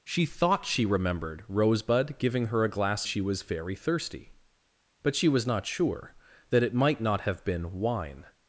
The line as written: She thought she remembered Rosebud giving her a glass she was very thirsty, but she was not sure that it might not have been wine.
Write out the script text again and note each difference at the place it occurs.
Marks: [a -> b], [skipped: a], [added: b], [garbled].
She thought she remembered Rosebud giving her a glass she was very thirsty, but she was not sure that it might not have been wine.